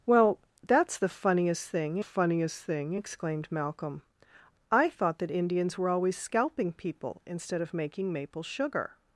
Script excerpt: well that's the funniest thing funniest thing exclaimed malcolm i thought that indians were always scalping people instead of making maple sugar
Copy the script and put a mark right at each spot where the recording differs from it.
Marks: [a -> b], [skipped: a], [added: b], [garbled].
well that's the funniest thing funniest thing exclaimed malcolm i thought that indians were always scalping people instead of making maple sugar